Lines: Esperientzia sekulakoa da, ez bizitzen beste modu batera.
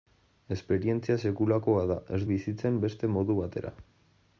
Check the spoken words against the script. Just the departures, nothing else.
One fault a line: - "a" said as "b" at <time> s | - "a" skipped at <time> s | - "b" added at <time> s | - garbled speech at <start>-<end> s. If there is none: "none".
none